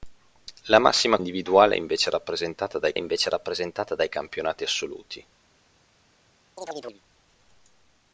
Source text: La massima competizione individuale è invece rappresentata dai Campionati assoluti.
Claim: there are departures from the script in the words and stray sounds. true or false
true